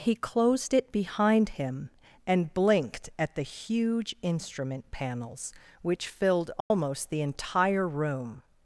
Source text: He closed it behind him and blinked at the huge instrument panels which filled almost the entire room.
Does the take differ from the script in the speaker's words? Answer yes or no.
no